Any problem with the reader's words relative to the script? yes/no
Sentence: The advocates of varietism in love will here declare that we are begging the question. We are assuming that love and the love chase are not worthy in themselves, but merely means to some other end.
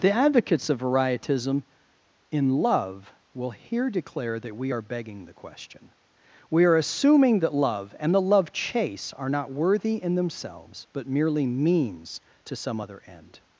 no